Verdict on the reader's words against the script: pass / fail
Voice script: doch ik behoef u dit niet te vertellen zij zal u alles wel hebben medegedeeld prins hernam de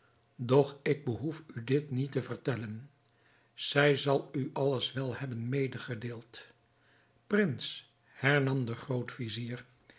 pass